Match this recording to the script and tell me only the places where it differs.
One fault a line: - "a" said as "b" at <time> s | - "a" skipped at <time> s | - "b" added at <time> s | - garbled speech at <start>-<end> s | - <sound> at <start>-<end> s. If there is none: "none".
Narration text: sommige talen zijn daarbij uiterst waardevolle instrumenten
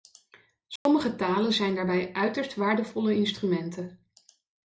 - dropout at 0.8-0.9 s